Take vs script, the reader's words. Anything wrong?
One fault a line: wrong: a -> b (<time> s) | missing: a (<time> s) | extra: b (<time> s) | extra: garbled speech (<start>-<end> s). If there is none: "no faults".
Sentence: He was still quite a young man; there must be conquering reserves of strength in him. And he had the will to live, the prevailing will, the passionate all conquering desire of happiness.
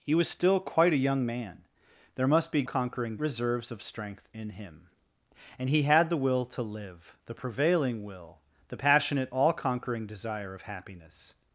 no faults